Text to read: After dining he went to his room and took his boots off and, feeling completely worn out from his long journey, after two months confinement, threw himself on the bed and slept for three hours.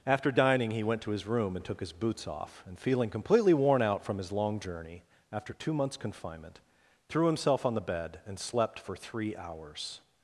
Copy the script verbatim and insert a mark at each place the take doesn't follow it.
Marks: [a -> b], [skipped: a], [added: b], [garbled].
After dining he went to his room and took his boots off and, feeling completely worn out from his long journey, after two months confinement, threw himself on the bed and slept for three hours.